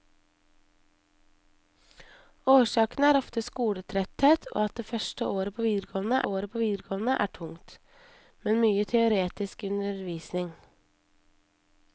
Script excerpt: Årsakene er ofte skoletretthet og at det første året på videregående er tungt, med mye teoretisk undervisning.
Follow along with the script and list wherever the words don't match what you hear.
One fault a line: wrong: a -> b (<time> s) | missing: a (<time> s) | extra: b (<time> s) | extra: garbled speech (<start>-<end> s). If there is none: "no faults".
extra: året på videregående (6.2 s)